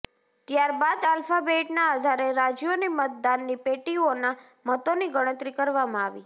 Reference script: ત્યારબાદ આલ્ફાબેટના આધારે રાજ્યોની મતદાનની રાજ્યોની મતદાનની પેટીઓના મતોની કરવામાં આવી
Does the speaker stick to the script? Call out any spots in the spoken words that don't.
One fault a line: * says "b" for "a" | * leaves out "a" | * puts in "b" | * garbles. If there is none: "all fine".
* leaves out "રાજ્યોની મતદાનની"
* puts in "ગણતરી"